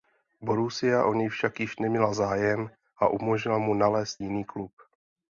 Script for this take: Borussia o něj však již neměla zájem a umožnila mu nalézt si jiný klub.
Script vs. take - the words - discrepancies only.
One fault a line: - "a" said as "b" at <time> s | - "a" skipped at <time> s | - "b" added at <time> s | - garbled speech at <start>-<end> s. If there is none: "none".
- "si" skipped at 4.2 s